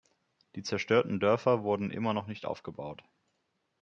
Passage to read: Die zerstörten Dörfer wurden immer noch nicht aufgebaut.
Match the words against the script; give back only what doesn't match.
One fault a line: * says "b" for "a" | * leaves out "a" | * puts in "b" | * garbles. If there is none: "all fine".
all fine